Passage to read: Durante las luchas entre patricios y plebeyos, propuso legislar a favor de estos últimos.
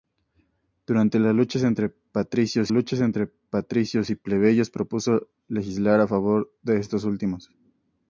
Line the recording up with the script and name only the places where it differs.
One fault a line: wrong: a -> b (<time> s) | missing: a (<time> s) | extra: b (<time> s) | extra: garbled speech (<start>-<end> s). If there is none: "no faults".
extra: luchas entre patricios (2.7 s)